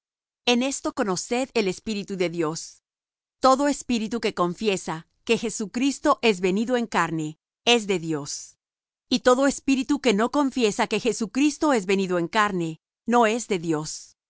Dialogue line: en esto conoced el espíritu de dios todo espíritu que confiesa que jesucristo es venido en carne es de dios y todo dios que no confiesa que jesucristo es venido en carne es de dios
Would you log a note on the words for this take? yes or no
yes